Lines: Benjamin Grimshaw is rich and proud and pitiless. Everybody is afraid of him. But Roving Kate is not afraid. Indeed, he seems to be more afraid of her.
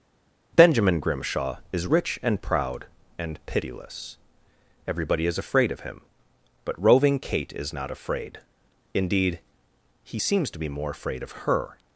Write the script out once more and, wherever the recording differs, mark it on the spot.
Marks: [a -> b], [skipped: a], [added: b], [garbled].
Benjamin Grimshaw is rich and proud and pitiless. Everybody is afraid of him. But Roving Kate is not afraid. Indeed, he seems to be more afraid of her.